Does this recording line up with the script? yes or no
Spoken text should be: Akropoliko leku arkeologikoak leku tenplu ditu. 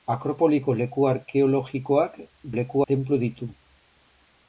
yes